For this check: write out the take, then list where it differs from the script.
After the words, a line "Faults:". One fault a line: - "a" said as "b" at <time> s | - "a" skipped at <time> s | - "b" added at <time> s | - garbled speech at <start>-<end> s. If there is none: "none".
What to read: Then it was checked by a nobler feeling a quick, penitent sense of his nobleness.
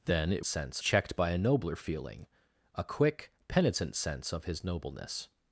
Then it sense checked by a nobler feeling a quick, penitent sense of his nobleness.
Faults:
- "was" said as "sense" at 0.5 s